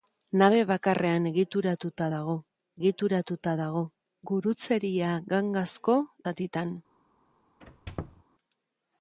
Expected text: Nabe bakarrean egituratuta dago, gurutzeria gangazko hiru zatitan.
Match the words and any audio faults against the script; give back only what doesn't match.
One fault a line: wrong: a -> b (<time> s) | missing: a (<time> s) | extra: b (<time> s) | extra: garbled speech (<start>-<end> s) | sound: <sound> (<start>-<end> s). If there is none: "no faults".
extra: egituratuta dago (2.8 s)
missing: hiru (6.0 s)
sound: squeak (7.6-8.2 s)